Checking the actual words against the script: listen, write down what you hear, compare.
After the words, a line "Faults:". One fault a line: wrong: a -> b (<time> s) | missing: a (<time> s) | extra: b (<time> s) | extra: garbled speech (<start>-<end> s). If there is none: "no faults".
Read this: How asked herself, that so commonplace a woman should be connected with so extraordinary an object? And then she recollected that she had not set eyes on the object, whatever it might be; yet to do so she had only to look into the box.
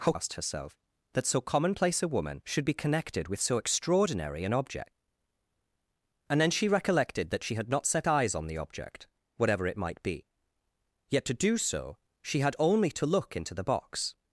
How asked herself, that so commonplace a woman should be connected with so extraordinary an object? And then she recollected that she had not set eyes on the object, whatever it might be; yet to do so she had only to look into the box.
Faults:
no faults